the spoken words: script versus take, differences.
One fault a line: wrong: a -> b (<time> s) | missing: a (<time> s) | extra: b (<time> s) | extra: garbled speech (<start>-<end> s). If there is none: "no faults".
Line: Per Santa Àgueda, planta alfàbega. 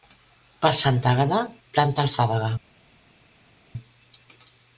no faults